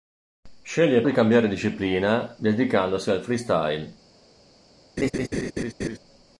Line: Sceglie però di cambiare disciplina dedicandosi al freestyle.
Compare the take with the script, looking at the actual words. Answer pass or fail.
fail